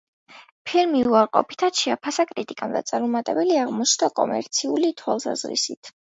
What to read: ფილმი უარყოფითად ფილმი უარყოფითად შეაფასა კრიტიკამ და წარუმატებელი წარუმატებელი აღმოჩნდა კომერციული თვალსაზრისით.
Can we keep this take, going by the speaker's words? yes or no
no